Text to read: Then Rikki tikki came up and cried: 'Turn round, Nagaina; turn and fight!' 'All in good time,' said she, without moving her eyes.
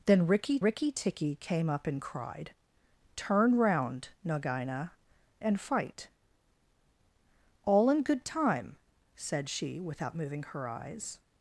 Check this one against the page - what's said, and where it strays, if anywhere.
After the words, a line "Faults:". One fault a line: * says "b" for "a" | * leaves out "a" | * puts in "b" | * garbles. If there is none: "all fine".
Then Rikki Rikki tikki came up and cried: 'Turn round, Nagaina; and fight!' 'All in good time,' said she, without moving her eyes.
Faults:
* puts in "Rikki"
* leaves out "turn"